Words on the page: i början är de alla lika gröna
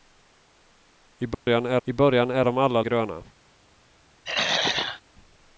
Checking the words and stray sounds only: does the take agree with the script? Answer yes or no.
no